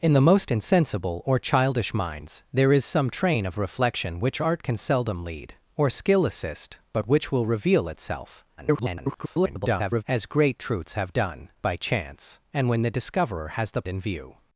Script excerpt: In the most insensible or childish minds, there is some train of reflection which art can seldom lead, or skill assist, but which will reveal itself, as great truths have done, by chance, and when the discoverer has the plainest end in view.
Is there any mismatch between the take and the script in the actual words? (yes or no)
yes